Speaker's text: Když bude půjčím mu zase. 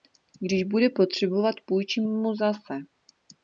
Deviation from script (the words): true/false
true